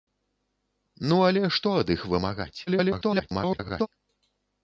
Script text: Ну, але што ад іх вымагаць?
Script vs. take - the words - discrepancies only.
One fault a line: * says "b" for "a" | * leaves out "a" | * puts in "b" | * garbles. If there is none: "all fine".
* garbles